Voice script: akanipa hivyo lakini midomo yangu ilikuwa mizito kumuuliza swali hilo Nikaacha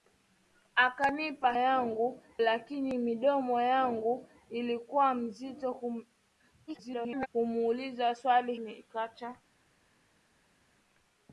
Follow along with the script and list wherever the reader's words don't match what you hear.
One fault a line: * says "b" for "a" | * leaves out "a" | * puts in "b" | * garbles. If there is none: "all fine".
* says "yangu" for "hivyo"
* garbles
* leaves out "hilo"